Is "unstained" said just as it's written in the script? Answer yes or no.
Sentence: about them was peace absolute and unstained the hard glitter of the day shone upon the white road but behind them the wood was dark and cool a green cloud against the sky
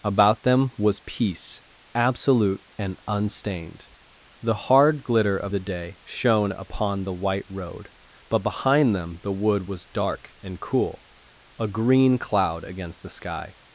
yes